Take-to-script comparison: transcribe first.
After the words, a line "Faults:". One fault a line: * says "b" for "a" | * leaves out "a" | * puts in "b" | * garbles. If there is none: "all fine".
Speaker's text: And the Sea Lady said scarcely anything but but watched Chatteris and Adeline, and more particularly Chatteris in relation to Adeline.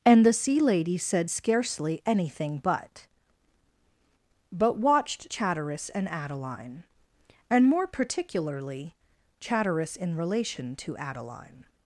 And the Sea Lady said scarcely anything but but watched Chatteris and Adeline, and more particularly Chatteris in relation to Adeline.
Faults:
all fine